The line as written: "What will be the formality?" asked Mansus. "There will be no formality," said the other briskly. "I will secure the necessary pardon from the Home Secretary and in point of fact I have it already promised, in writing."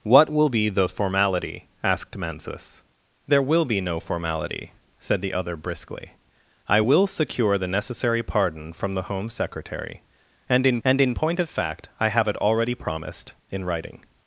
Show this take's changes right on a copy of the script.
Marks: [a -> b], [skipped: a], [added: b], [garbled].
"What will be the formality?" asked Mansus. "There will be no formality," said the other briskly. "I will secure the necessary pardon from the Home Secretary and in [added: and in] point of fact I have it already promised, in writing."